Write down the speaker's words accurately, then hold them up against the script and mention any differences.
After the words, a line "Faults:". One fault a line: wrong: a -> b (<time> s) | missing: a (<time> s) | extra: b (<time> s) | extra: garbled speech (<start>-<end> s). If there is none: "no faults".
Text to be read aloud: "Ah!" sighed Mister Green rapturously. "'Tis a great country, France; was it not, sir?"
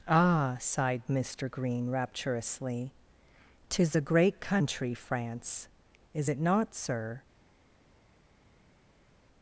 "Ah!" sighed Mister Green rapturously. "'Tis a great country, France; is it not, sir?"
Faults:
wrong: was -> is (6.1 s)